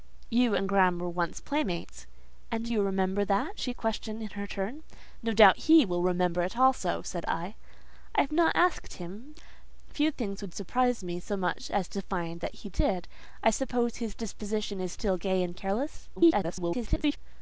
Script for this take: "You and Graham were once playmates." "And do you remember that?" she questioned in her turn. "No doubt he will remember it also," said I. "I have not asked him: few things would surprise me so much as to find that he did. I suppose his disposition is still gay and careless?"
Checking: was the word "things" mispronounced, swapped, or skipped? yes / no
no